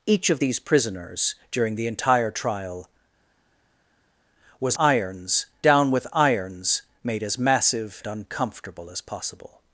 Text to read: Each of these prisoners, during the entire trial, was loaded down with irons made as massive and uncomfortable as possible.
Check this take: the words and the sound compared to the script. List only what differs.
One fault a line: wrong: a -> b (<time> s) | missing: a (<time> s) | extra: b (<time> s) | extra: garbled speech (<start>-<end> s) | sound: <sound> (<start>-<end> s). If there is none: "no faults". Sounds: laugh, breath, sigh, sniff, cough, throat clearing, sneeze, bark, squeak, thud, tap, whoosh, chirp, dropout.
wrong: loaded -> irons (4.8 s)
missing: and (8.0 s)